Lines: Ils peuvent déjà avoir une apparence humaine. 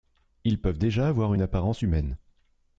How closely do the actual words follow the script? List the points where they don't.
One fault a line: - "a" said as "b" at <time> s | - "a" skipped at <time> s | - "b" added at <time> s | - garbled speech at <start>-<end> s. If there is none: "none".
none